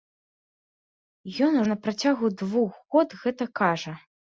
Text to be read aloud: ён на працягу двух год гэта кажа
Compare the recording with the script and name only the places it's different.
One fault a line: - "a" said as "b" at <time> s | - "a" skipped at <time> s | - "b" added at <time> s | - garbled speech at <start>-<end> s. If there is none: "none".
none